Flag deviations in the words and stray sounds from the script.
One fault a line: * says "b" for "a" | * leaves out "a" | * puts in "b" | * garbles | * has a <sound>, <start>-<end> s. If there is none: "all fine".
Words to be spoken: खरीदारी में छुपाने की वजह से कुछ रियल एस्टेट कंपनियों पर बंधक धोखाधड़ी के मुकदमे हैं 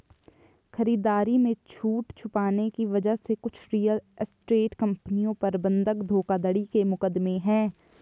* puts in "छूट"